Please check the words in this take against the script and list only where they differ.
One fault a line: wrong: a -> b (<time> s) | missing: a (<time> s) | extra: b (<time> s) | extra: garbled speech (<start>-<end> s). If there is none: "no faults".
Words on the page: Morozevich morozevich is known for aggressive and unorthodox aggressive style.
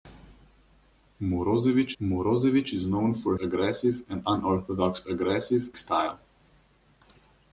no faults